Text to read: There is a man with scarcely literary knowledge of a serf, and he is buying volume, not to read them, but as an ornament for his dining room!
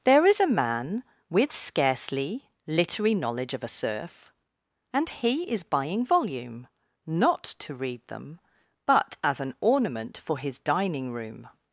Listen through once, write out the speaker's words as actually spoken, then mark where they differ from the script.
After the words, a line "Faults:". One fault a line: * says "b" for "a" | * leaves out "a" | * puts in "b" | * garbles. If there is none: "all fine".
There is a man with scarcely literary knowledge of a serf, and he is buying volume, not to read them, but as an ornament for his dining room!
Faults:
all fine